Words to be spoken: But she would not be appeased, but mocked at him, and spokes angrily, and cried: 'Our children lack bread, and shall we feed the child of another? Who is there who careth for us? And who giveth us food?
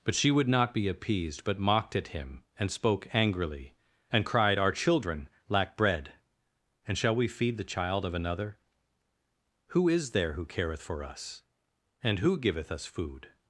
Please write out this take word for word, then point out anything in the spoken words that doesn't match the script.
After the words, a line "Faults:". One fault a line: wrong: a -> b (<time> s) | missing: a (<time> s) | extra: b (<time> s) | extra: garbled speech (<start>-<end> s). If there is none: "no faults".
But she would not be appeased, but mocked at him, and spoke angrily, and cried: 'Our children lack bread, and shall we feed the child of another? Who is there who careth for us? And who giveth us food?
Faults:
wrong: spokes -> spoke (2.7 s)